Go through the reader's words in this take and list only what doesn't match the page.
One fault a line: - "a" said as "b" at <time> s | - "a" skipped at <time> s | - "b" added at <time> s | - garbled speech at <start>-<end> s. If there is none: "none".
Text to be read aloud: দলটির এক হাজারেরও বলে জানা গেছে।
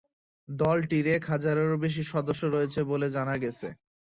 - "বেশি সদস্য রয়েছে" added at 1.8 s